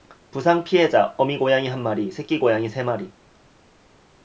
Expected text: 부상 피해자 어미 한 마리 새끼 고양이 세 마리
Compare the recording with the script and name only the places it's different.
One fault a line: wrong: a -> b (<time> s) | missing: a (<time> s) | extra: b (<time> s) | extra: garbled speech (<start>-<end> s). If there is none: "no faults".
extra: 고양이 (1.4 s)